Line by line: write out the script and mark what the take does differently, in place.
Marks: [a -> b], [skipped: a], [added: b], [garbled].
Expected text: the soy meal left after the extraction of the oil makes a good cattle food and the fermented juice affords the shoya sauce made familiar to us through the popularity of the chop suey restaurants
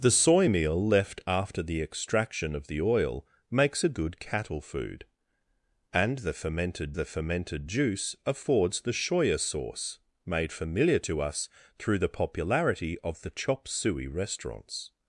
the soy meal left after the extraction of the oil makes a good cattle food and the fermented [added: the fermented] juice affords the shoya sauce made familiar to us through the popularity of the chop suey restaurants